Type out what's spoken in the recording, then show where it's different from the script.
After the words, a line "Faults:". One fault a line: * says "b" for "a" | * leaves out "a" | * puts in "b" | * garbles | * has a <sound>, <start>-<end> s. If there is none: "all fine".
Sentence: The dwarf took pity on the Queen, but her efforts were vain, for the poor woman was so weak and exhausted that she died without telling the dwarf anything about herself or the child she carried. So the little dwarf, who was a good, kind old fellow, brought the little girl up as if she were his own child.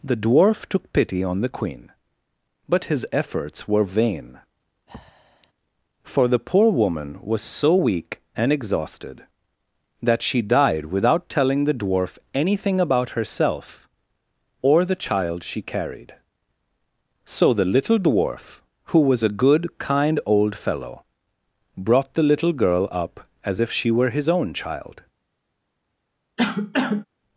The dwarf took pity on the Queen, but his efforts were vain, for the poor woman was so weak and exhausted that she died without telling the dwarf anything about herself or the child she carried. So the little dwarf, who was a good, kind old fellow, brought the little girl up as if she were his own child.
Faults:
* says "his" for "her"
* has a breath, 4.9-5.5 s
* has a cough, 26.4-27.0 s